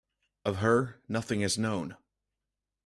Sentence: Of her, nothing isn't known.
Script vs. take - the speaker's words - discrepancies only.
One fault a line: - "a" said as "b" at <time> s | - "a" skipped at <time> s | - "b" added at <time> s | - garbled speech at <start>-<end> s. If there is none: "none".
- "isn't" said as "is" at 1.4 s